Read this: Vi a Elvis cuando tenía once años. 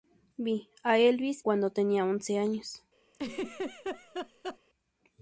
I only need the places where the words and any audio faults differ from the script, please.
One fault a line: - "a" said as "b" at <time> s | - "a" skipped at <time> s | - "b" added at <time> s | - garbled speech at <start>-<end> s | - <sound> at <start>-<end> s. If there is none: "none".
- laugh at 3.1-4.6 s